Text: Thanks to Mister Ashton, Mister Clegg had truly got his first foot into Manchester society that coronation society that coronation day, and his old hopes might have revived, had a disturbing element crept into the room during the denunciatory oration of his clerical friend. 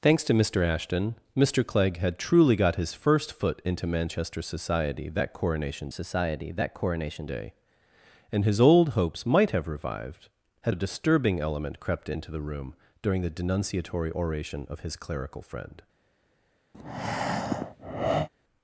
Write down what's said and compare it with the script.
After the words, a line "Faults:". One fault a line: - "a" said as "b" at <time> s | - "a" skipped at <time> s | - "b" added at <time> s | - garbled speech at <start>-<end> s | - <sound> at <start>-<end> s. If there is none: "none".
Thanks to Mister Ashton, Mister Clegg had truly got his first foot into Manchester society that coronation society that coronation day, and his old hopes might have revived, had a disturbing element crept into the room during the denunciatory oration of his clerical friend.
Faults:
- breath at 16.7-18.3 s